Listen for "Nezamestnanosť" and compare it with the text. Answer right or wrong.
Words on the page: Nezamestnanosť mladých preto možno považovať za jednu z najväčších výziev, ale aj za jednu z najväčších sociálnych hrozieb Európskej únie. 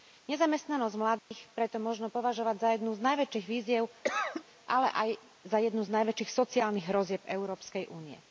right